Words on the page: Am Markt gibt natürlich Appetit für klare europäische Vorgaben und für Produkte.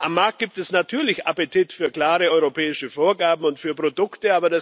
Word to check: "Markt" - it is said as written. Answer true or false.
true